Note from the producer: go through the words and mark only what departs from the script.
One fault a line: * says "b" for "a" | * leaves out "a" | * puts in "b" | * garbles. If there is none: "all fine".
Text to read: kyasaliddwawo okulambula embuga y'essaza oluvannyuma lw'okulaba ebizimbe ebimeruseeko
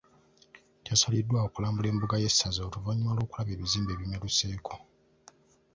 all fine